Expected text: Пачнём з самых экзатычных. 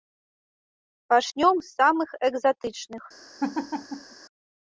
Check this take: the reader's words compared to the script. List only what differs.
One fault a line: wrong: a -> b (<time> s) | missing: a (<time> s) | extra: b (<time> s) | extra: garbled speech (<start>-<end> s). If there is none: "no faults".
no faults